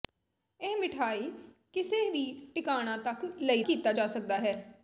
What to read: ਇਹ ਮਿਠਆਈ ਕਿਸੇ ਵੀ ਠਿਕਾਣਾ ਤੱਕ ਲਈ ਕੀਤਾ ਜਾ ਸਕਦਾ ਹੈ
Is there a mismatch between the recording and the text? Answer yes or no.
no